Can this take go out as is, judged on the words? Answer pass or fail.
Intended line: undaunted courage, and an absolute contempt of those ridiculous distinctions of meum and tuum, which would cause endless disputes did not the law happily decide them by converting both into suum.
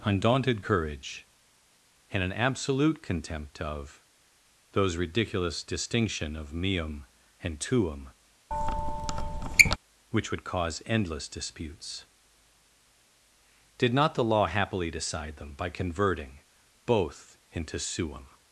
fail